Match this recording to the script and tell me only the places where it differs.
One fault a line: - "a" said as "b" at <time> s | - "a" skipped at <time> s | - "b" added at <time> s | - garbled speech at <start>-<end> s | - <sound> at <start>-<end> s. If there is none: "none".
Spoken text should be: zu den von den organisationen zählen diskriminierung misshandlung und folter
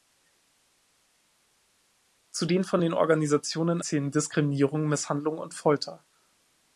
none